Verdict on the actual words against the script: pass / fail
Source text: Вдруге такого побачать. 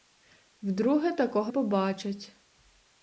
pass